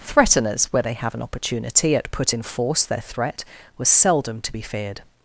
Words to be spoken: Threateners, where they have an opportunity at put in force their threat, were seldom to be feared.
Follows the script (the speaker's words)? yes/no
yes